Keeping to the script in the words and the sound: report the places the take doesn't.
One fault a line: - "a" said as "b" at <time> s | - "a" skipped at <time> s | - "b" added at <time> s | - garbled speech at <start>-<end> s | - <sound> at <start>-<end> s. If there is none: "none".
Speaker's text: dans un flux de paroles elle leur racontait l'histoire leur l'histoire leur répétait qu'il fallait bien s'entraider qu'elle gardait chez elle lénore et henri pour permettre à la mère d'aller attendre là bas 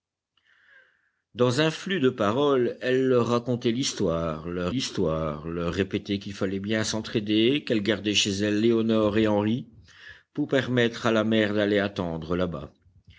none